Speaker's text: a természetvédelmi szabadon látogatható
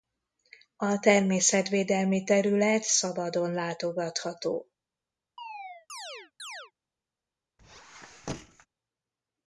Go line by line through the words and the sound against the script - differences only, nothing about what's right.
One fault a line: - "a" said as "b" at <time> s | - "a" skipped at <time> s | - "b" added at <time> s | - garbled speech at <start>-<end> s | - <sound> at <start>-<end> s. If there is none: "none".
- "terület" added at 2.2 s
- chirp at 5.4-6.7 s
- squeak at 7.6-8.7 s